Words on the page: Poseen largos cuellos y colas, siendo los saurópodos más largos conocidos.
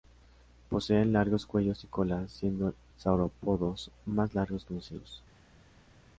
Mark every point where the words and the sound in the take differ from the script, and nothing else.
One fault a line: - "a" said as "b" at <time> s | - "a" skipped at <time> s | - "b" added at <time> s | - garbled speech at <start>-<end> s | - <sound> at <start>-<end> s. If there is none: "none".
- "los" skipped at 2.7 s